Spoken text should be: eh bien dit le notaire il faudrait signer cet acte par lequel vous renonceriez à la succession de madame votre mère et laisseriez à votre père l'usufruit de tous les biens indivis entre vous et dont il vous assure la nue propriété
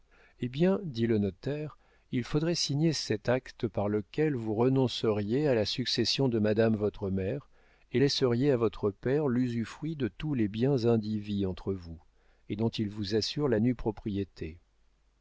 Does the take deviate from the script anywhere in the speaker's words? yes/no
no